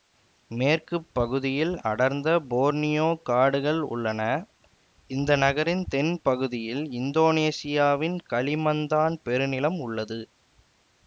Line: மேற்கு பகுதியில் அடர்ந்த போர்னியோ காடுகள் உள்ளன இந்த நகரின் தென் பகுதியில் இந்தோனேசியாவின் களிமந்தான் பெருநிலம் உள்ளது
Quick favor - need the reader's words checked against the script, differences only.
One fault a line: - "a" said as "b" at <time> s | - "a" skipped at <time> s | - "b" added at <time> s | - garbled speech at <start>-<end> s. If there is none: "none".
none